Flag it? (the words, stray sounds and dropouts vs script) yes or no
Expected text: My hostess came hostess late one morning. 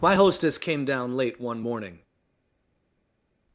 yes